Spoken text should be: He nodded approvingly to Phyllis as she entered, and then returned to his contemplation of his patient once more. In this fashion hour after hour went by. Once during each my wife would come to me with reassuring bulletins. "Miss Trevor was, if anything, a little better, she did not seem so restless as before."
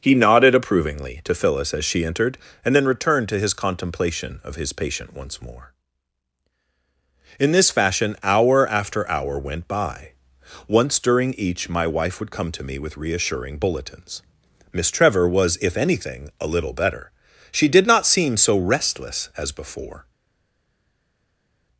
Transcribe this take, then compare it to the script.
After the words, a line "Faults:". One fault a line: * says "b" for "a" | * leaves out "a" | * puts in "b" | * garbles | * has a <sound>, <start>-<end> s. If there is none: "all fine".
He nodded approvingly to Phyllis as she entered, and then returned to his contemplation of his patient once more. In this fashion hour after hour went by. Once during each my wife would come to me with reassuring bulletins. "Miss Trevor was, if anything, a little better, she did not seem so restless as before."
Faults:
all fine